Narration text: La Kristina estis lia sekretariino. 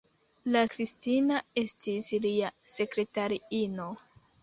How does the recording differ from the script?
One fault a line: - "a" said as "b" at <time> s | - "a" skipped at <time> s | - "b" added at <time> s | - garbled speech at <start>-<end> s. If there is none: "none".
none